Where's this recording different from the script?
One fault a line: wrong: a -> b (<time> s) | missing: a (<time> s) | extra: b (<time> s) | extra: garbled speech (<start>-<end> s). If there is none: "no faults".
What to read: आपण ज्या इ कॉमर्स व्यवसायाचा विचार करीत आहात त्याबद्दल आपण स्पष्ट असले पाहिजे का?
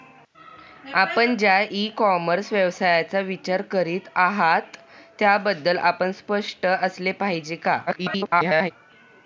extra: garbled speech (7.9-8.7 s)